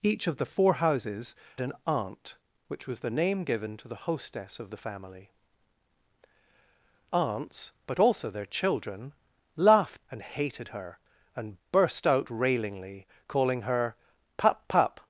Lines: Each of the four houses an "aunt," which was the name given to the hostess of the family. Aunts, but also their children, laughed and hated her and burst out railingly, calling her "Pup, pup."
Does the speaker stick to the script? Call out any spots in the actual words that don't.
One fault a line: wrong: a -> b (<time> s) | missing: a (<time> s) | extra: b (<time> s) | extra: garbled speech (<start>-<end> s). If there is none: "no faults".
no faults